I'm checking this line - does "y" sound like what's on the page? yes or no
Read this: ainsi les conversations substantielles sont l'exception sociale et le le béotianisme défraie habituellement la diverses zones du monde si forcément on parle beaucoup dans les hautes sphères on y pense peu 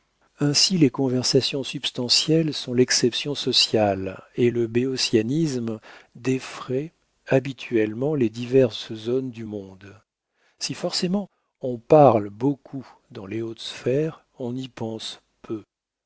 yes